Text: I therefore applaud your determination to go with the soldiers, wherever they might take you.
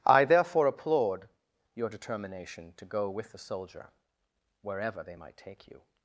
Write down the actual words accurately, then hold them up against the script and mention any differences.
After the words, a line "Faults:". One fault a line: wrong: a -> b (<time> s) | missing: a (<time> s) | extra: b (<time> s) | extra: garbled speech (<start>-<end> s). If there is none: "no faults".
I therefore applaud your determination to go with the soldier, wherever they might take you.
Faults:
wrong: soldiers -> soldier (3.4 s)